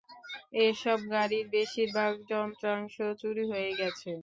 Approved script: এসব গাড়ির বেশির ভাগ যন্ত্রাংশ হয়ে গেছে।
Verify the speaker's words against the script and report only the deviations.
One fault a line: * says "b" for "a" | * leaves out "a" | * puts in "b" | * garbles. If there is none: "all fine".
* puts in "চুরি"